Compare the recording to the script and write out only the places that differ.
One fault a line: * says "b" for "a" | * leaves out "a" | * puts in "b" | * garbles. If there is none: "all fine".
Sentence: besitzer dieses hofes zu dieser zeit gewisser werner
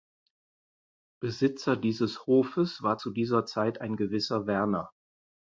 * puts in "war"
* puts in "ein"